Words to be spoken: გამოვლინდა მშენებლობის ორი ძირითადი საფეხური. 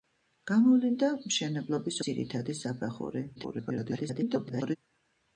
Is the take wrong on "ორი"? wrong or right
wrong